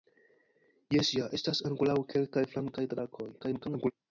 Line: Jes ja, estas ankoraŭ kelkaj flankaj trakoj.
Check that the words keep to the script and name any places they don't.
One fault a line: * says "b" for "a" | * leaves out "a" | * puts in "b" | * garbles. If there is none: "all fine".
* garbles